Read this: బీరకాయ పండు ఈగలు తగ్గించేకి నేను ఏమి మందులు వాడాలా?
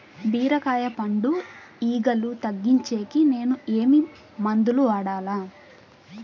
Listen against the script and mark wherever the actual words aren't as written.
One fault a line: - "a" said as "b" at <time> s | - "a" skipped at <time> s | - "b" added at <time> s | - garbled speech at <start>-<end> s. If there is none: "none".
none